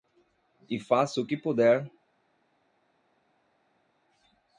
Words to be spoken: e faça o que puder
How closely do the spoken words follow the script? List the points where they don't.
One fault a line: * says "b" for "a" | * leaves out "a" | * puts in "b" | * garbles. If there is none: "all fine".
all fine